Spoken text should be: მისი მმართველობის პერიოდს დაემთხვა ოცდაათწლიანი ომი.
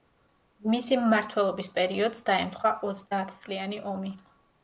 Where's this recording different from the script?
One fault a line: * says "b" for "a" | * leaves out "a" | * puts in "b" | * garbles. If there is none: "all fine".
all fine